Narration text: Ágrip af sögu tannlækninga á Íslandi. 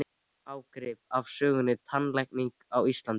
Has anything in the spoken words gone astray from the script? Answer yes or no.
no